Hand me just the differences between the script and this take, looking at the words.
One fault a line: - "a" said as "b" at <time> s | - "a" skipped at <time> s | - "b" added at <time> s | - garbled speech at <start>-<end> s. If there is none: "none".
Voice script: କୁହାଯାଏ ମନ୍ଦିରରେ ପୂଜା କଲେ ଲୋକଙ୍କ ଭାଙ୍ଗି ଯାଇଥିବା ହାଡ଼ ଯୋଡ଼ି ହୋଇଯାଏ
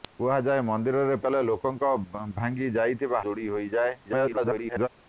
- "ପୂଜା" skipped at 1.2 s
- "ହାଡ଼" skipped at 3.2 s
- garbled speech at 4.0-4.9 s